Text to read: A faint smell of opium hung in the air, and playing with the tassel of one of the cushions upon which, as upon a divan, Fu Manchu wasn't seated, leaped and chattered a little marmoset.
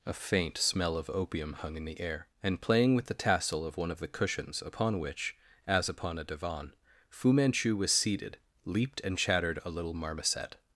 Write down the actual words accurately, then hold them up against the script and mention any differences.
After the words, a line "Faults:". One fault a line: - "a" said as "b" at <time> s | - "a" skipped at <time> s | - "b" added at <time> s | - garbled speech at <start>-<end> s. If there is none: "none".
A faint smell of opium hung in the air, and playing with the tassel of one of the cushions upon which, as upon a divan, Fu Manchu was seated, leaped and chattered a little marmoset.
Faults:
- "wasn't" said as "was" at 7.8 s